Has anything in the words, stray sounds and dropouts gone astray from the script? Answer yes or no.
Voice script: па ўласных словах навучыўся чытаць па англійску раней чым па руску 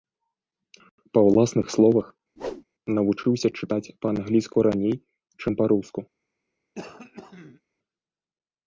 yes